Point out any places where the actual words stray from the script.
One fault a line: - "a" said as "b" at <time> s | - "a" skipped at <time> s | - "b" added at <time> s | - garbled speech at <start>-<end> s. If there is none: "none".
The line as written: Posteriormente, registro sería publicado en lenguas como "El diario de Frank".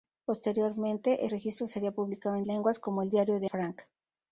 none